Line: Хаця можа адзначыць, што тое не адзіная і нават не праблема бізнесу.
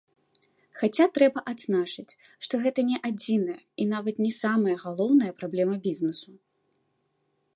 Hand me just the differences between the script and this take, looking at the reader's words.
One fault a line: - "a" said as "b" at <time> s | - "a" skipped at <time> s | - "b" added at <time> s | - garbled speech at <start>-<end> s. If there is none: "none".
- "можа" said as "трэба" at 1.2 s
- "тое" said as "гэта" at 2.6 s
- "самая галоўная" added at 4.4 s